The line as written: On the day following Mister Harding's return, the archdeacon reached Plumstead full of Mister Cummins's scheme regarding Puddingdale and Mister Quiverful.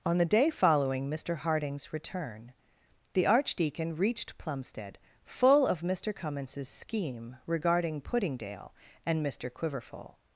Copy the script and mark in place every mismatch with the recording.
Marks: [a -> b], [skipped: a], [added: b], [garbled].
On the day following Mister Harding's return, the archdeacon reached Plumstead full of Mister Cummins's scheme regarding Puddingdale and Mister Quiverful.